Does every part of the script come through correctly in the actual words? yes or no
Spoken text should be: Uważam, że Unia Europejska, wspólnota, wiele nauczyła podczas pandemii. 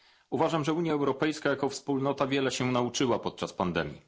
no